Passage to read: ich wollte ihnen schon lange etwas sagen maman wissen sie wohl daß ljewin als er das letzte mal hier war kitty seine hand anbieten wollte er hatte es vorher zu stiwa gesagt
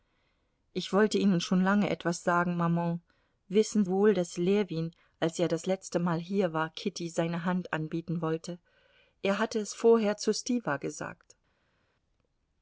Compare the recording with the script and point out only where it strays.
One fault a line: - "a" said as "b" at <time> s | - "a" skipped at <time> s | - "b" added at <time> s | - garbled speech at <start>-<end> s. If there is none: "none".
- "sie" skipped at 3.9 s